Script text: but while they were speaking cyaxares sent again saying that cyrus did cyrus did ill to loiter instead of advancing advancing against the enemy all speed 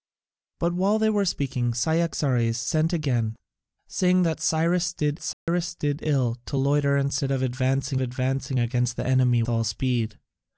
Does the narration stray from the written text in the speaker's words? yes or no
no